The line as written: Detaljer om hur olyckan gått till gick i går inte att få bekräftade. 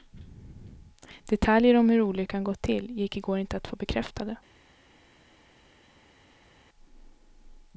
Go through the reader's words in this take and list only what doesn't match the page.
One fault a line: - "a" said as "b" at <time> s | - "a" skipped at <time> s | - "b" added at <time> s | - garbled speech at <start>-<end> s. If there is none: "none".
none